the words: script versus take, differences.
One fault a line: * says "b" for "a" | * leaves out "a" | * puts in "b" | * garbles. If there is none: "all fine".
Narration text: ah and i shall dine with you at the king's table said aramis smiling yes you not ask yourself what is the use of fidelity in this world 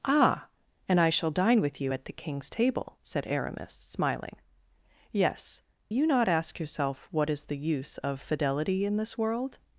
all fine